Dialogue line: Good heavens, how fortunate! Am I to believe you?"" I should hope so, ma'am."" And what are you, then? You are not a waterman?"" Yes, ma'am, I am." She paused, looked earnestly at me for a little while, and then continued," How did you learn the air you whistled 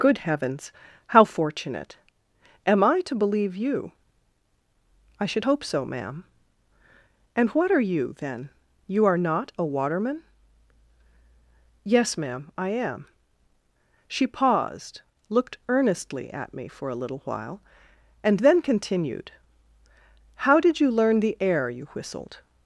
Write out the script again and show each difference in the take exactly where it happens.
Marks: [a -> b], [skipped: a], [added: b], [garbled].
Good heavens, how fortunate! Am I to believe you?"" I should hope so, ma'am."" And what are you, then? You are not a waterman?"" Yes, ma'am, I am." She paused, looked earnestly at me for a little while, and then continued," How did you learn the air you whistled